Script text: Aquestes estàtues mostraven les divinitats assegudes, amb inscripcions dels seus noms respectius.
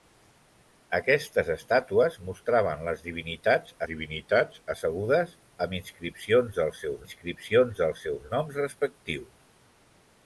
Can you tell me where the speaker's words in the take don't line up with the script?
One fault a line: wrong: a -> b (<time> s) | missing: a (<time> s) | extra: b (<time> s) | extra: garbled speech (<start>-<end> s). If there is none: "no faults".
extra: divinitats (3.9 s)
extra: inscripcions dels seus (7.0 s)